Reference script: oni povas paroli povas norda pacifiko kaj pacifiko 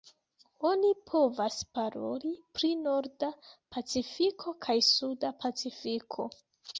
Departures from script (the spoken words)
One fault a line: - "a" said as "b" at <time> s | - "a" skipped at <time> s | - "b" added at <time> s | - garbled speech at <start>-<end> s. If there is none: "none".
- "povas" said as "pri" at 2.6 s
- "suda" added at 4.9 s